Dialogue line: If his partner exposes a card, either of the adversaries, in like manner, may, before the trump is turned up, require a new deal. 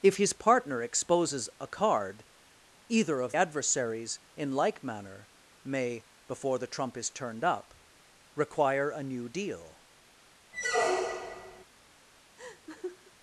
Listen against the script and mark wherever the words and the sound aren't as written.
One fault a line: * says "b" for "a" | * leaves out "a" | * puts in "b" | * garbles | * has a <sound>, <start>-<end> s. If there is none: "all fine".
* leaves out "the"
* has a squeak, 10.5-11.6 s
* has a laugh, 12.4-13.1 s